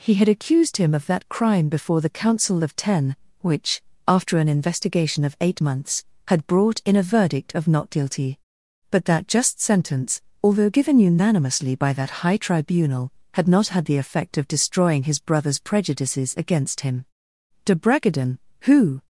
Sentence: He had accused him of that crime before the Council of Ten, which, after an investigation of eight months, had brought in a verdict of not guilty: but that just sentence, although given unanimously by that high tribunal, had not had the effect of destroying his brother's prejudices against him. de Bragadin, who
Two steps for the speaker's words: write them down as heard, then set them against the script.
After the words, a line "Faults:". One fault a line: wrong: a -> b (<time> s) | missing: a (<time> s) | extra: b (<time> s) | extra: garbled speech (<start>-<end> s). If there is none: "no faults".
He had accused him of that crime before the Council of Ten, which, after an investigation of eight months, had brought in a verdict of not guilty: but that just sentence, although given unanimously by that high tribunal, had not had the effect of destroying his brother's prejudices against him. de Bragadin, who
Faults:
no faults